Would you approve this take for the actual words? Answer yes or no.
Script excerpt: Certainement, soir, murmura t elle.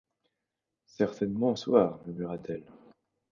yes